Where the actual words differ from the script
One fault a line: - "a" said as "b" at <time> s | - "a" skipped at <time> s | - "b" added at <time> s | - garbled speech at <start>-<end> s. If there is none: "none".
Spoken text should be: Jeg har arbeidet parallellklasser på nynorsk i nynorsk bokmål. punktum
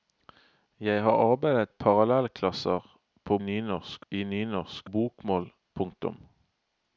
none